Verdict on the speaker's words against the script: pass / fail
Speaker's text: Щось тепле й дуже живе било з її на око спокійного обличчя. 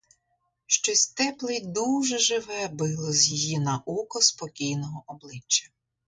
pass